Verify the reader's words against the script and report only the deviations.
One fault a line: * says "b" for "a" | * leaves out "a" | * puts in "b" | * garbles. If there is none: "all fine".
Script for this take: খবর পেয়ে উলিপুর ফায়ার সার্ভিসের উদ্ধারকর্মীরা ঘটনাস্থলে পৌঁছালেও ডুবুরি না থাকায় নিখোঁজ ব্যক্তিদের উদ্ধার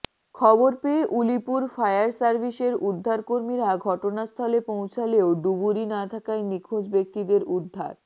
all fine